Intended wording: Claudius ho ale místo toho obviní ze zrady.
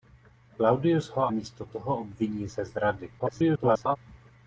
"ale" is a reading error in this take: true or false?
true